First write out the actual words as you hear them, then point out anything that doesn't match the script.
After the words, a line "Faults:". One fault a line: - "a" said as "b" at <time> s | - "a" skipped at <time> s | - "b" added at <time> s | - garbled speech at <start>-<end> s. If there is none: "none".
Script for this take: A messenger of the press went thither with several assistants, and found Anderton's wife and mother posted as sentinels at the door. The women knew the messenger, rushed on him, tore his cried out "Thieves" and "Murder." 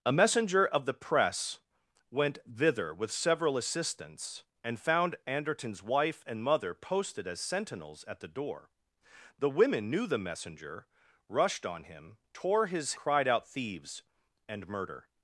A messenger of the press went thither with several assistants, and found Anderton's wife and mother posted as sentinels at the door. The women knew the messenger, rushed on him, tore his cried out "Thieves" and "Murder."
Faults:
none